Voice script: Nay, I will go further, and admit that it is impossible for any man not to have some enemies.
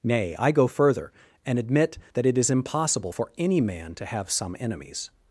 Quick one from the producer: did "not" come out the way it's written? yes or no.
no